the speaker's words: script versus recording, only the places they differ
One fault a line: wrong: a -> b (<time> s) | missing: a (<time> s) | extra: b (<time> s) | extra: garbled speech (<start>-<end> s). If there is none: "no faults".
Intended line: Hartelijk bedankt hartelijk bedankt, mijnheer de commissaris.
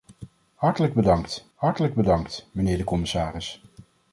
no faults